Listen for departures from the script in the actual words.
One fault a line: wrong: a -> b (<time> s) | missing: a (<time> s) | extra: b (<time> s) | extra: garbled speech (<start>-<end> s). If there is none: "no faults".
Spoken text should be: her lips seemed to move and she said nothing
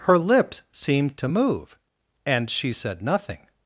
no faults